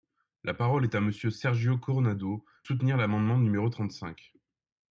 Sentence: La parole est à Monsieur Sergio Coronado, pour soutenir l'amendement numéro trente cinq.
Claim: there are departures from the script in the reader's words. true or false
true